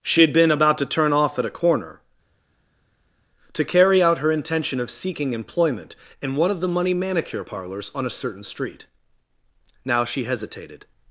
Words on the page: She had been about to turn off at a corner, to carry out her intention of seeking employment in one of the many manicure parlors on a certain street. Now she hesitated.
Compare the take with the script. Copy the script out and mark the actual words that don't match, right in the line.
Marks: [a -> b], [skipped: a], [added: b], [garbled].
She had been about to turn off at a corner, to carry out her intention of seeking employment in one of the [many -> money] manicure parlors on a certain street. Now she hesitated.